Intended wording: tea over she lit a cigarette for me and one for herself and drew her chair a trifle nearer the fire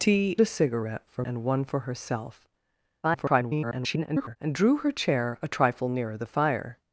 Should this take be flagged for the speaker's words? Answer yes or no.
yes